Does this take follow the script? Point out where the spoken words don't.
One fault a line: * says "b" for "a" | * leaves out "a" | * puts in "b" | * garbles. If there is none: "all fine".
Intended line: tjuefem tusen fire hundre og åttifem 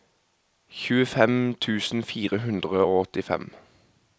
all fine